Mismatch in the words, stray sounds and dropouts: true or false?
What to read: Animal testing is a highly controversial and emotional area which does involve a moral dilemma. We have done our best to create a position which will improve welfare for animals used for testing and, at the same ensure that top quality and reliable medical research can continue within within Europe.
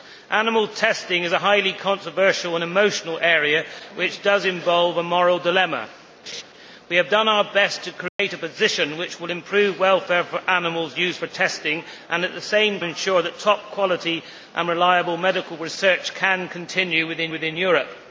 true